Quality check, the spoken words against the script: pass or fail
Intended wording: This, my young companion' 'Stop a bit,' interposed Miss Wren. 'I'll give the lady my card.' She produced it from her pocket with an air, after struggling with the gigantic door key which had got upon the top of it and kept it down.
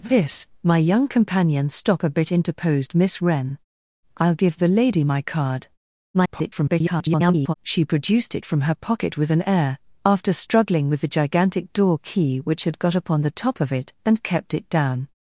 fail